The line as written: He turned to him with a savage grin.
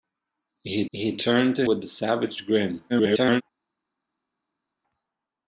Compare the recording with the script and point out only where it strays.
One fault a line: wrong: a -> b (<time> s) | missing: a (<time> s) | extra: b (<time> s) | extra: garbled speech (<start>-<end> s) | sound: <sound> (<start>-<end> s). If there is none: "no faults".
extra: he (0.9 s)
missing: him (1.7 s)
extra: garbled speech (2.9-3.4 s)